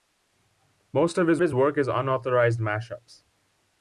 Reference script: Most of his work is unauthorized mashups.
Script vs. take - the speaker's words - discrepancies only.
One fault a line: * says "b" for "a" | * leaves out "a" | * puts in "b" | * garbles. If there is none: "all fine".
* puts in "his"